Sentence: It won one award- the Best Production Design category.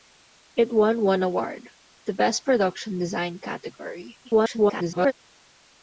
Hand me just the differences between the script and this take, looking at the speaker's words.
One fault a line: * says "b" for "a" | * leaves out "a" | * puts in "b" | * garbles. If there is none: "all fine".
* garbles